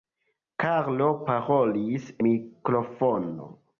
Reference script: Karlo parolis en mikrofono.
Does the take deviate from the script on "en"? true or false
true